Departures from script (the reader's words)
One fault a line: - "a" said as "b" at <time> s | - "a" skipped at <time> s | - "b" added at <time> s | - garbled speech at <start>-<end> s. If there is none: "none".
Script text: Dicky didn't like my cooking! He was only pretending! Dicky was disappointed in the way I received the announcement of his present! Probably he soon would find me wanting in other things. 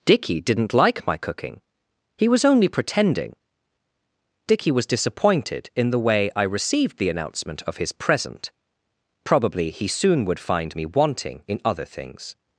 none